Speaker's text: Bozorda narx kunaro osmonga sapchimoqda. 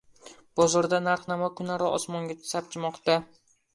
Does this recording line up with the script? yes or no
no